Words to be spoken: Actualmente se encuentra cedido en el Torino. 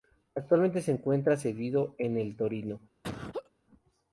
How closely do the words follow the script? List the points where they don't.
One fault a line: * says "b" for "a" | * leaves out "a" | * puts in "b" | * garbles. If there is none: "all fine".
all fine